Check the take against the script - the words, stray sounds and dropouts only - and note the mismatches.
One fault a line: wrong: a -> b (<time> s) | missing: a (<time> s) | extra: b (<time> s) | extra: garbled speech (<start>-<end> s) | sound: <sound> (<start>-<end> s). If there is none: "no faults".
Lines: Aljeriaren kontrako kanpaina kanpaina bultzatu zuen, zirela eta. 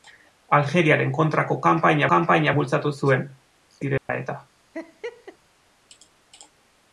sound: dropout (4.0-4.1 s)
sound: laugh (4.7-5.4 s)